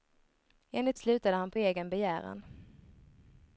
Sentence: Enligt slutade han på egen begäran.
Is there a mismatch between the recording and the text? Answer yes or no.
no